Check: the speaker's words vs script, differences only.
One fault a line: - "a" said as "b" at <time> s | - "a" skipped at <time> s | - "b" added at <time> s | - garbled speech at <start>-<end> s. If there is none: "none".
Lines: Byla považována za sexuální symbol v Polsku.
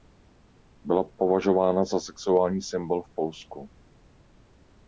none